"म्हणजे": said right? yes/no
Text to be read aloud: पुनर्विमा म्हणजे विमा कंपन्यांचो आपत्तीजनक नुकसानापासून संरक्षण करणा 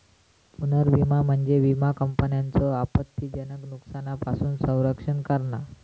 yes